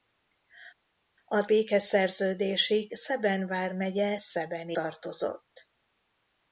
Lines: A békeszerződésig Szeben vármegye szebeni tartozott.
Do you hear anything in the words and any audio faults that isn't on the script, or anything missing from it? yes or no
no